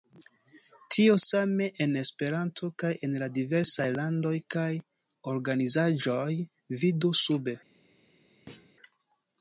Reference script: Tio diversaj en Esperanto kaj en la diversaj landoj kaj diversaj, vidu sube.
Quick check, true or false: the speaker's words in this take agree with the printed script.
false